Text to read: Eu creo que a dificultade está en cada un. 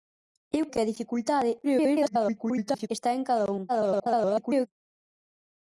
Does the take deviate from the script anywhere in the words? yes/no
yes